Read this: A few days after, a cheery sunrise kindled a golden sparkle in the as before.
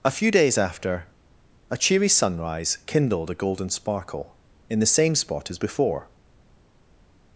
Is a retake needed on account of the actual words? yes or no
yes